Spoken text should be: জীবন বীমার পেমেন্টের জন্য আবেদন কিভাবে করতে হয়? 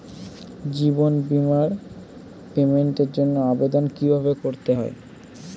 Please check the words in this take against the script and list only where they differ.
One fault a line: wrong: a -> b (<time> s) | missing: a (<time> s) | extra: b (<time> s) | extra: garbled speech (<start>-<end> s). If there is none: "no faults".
no faults